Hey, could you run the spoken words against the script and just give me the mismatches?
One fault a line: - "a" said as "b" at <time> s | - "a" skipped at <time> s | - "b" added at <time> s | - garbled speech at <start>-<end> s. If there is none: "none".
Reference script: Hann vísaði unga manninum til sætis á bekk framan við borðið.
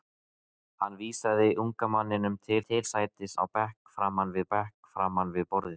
- "til" added at 2.7 s
- "bekk framan við" added at 4.5 s